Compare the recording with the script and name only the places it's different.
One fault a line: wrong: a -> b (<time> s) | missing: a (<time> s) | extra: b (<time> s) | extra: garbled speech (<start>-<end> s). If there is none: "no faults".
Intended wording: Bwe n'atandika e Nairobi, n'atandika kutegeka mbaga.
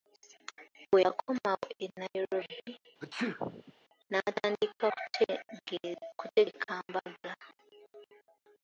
wrong: n'atandika -> yakomawo (1.1 s)